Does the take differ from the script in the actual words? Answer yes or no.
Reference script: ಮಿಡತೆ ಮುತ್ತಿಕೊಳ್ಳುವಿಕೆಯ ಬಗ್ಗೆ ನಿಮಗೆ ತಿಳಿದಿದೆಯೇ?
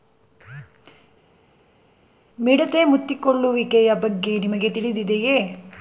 no